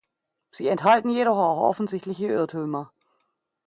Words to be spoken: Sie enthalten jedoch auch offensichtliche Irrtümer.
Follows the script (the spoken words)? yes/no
yes